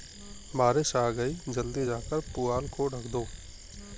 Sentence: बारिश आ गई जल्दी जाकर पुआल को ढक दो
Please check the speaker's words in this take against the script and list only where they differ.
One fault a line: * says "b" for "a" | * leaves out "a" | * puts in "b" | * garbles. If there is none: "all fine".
all fine